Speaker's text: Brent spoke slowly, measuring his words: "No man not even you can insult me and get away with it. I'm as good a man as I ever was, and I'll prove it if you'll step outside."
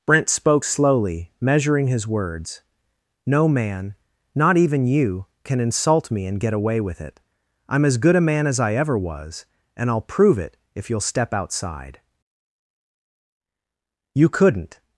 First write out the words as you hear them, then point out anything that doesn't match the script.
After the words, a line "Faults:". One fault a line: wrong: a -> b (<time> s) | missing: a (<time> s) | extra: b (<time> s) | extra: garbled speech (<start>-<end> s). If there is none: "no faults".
Brent spoke slowly, measuring his words: "No man not even you can insult me and get away with it. I'm as good a man as I ever was, and I'll prove it if you'll step outside." "You couldn't
Faults:
extra: You couldn't (14.1 s)